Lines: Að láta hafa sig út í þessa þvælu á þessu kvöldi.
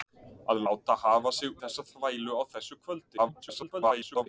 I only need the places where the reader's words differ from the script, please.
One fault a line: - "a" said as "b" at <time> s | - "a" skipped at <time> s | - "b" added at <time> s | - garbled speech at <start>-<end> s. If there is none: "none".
- "út" skipped at 1.6 s
- garbled speech at 3.2-4.3 s